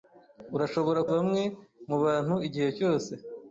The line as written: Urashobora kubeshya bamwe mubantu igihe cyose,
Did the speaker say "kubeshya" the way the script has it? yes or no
no